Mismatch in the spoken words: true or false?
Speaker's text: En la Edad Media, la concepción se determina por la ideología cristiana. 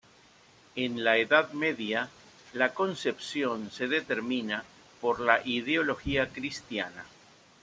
false